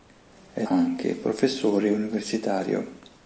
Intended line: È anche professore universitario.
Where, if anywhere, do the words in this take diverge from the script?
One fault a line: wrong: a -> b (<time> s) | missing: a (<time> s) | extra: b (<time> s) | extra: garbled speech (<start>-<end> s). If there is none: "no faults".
no faults